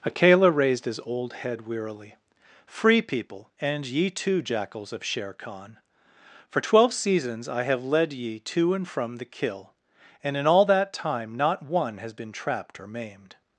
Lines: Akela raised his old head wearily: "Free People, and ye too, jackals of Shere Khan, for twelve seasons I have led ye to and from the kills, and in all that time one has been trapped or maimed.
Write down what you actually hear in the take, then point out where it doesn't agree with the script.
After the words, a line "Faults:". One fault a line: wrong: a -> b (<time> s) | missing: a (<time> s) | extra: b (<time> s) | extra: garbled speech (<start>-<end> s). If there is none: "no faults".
Akela raised his old head wearily: "Free People, and ye too, jackals of Shere Khan, for twelve seasons I have led ye to and from the kill, and in all that time not one has been trapped or maimed.
Faults:
wrong: kills -> kill (9.3 s)
extra: not (11.4 s)